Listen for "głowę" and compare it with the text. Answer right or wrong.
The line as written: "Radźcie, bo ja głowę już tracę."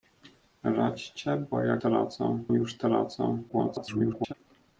wrong